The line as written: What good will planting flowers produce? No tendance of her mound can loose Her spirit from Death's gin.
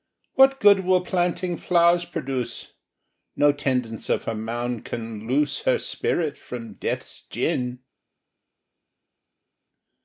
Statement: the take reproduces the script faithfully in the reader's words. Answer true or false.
true